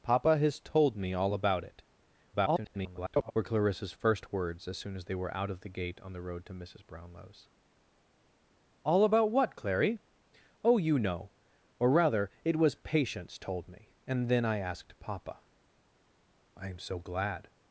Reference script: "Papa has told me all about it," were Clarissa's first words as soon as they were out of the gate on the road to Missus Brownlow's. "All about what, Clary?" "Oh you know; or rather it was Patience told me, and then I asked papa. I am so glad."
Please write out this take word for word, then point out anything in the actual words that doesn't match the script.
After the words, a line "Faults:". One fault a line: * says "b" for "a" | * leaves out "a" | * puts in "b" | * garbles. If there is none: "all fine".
"Papa has told me all about it," [garbled] were Clarissa's first words as soon as they were out of the gate on the road to Missus Brownlow's. "All about what, Clary?" "Oh you know; or rather it was Patience told me, and then I asked papa. I am so glad."
Faults:
* garbles